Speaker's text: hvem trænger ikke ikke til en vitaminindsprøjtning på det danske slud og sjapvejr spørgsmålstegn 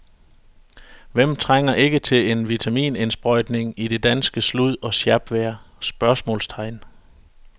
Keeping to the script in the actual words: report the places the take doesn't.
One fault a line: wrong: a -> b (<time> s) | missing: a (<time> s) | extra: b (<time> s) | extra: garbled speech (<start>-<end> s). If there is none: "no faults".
missing: ikke (2.0 s)
wrong: på -> i (3.8 s)